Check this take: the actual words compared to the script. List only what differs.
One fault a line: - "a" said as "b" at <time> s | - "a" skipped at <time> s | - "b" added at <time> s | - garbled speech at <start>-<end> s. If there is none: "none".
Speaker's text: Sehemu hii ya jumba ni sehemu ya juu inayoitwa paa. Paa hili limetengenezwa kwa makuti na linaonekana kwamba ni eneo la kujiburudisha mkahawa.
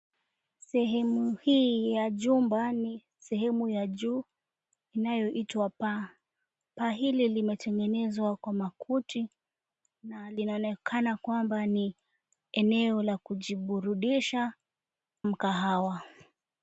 none